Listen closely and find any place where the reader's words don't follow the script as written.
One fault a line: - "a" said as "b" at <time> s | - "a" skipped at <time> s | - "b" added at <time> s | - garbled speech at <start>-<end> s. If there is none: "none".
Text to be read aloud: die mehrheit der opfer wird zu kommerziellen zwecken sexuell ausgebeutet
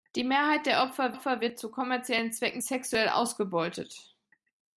- "opfer" added at 1.1 s